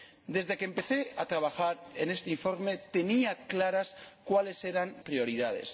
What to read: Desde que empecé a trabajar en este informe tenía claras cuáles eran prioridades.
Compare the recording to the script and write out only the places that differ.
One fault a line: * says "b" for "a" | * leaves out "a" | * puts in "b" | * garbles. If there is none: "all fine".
all fine